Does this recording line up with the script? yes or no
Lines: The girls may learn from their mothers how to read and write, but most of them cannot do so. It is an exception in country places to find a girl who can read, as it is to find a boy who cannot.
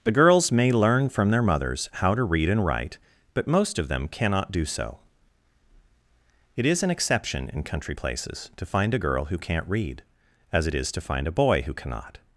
no